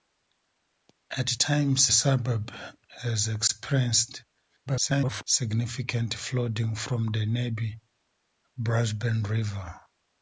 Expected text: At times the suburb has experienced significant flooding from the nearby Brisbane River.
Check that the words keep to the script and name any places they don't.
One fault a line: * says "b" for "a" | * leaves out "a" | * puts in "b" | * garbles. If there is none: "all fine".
* leaves out "the"
* garbles